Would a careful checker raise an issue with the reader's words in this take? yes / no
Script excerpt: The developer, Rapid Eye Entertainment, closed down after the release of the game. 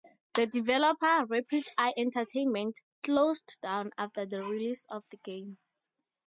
no